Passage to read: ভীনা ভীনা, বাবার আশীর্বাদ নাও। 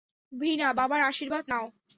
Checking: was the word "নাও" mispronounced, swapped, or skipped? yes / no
no